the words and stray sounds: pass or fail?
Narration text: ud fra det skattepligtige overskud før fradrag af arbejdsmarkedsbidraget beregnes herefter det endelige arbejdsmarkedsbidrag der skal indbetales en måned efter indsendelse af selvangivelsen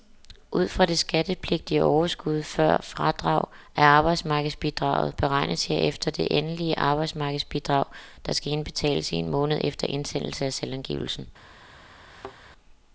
fail